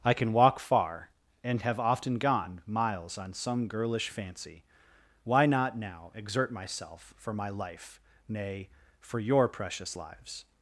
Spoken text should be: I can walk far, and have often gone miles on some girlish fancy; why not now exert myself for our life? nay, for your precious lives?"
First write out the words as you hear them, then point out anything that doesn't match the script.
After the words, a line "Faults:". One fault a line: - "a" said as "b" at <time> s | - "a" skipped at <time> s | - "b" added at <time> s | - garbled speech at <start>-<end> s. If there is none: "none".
I can walk far, and have often gone miles on some girlish fancy; why not now exert myself for my life? nay, for your precious lives?"
Faults:
- "our" said as "my" at 7.3 s